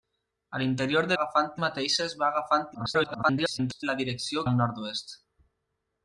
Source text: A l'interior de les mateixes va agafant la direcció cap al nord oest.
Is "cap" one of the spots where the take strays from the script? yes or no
yes